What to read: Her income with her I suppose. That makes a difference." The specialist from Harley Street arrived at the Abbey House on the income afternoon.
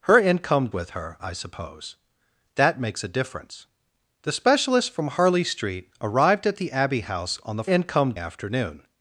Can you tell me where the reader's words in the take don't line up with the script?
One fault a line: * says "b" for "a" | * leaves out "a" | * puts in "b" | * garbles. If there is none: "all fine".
all fine